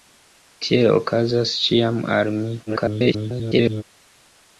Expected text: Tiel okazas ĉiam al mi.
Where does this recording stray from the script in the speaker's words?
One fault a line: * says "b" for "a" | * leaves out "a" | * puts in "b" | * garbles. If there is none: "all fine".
* garbles